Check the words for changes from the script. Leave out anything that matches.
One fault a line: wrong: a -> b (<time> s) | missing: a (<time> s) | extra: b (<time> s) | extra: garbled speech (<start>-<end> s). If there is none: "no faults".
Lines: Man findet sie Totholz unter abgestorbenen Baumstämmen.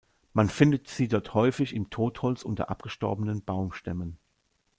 extra: dort häufig im (1.1 s)